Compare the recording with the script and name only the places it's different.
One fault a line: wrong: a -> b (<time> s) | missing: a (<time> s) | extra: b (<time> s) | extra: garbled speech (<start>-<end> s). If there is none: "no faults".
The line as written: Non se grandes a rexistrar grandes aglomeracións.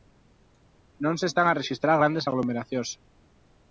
wrong: grandes -> están (1.3 s)